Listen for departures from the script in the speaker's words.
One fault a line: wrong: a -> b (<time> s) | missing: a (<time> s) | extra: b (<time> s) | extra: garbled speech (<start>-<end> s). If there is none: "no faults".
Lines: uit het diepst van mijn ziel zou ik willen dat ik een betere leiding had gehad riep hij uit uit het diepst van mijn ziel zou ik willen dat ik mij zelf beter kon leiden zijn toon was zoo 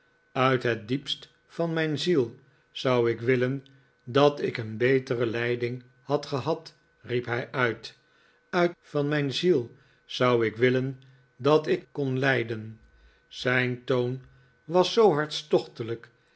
missing: het diepst (8.8 s)
missing: mij zelf beter (11.9 s)